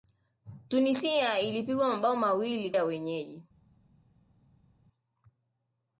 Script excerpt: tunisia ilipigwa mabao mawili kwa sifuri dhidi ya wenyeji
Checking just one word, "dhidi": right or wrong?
wrong